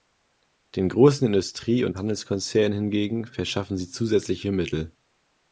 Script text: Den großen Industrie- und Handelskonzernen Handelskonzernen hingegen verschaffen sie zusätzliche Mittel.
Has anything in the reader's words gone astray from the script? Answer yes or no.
yes